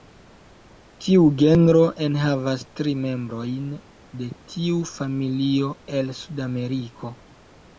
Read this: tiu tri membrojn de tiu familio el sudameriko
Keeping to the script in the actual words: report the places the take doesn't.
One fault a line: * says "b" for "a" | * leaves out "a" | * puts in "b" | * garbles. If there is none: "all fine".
* puts in "genro enhavas"